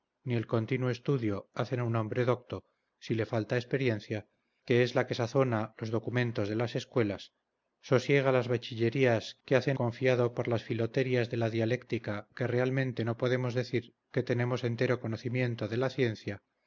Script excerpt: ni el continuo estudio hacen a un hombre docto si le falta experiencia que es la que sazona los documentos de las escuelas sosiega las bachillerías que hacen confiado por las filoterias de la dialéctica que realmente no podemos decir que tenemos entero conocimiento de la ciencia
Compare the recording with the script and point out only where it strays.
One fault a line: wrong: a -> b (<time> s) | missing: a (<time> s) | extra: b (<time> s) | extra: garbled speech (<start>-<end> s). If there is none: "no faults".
no faults